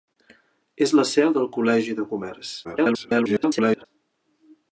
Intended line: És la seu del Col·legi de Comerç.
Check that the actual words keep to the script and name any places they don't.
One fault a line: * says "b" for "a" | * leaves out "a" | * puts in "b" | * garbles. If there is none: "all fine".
* garbles